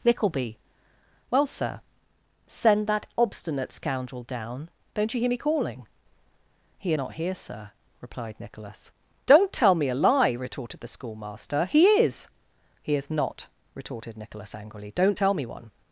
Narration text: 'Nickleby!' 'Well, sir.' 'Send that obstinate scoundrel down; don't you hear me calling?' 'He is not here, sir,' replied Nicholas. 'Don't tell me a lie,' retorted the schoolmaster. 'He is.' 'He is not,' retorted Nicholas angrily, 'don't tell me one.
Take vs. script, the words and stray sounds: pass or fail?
fail